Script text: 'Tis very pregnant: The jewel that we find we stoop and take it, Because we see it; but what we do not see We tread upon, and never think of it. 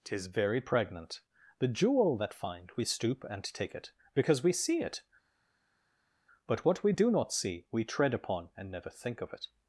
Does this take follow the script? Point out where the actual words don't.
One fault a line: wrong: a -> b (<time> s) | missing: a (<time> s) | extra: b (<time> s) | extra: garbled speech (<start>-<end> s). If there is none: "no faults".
missing: we (2.3 s)